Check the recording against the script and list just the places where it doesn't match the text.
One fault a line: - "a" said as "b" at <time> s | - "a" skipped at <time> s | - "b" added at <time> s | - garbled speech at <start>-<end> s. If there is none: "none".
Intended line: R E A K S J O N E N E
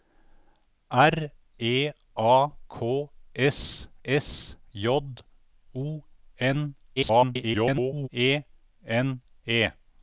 - "S" added at 4.0 s
- garbled speech at 7.0-8.1 s